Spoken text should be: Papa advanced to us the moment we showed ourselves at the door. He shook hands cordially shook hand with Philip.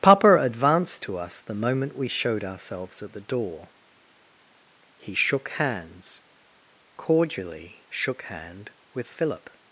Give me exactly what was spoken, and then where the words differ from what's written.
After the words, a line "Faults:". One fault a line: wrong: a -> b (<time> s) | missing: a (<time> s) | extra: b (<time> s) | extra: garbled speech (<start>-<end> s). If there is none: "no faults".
Papa advanced to us the moment we showed ourselves at the door. He shook hands cordially shook hand with Philip.
Faults:
no faults